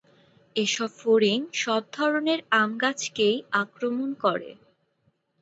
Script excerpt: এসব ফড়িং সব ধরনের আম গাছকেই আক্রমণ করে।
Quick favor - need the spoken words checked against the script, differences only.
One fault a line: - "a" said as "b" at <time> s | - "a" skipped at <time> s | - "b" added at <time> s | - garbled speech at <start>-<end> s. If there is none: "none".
none